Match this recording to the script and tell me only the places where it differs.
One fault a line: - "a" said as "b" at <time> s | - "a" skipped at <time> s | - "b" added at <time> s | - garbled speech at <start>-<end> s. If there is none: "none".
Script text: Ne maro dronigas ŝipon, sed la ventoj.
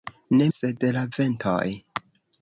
- "maro dronigas ŝipon" skipped at 0.5 s